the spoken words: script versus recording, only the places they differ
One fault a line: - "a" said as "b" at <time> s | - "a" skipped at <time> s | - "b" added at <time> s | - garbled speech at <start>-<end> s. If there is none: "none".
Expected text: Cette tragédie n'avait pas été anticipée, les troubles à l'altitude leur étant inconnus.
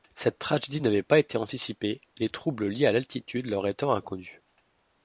- "liés" added at 2.7 s